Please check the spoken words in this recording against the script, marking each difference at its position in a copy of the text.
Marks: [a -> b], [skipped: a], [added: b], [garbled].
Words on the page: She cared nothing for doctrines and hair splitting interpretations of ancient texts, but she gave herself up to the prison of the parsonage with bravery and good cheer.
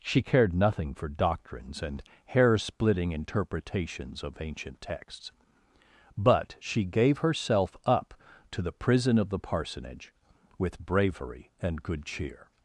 She cared nothing for doctrines and hair splitting interpretations of ancient texts, but she gave herself up to the prison of the parsonage with bravery and good cheer.